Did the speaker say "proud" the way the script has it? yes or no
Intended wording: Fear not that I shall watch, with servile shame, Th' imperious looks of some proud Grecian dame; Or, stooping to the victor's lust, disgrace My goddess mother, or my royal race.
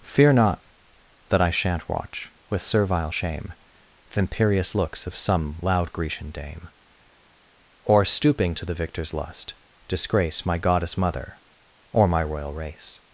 no